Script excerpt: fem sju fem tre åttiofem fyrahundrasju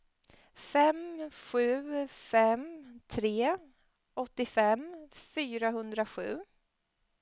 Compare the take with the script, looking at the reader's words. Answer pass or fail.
pass